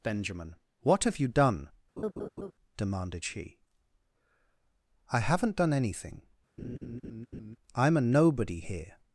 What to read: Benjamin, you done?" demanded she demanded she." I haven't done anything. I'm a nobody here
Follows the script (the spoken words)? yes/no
no